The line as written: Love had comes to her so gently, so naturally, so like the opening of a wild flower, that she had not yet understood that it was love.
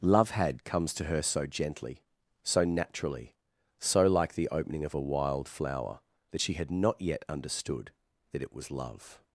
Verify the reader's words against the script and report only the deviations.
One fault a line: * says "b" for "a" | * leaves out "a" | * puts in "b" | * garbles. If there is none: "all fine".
all fine